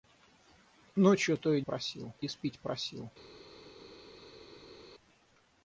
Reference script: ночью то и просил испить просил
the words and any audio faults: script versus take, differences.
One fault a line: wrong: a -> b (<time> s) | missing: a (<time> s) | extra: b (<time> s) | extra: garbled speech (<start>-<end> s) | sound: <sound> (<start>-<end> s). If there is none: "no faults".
no faults